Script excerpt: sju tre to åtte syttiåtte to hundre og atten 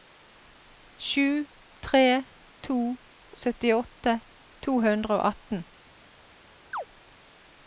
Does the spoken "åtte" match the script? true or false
false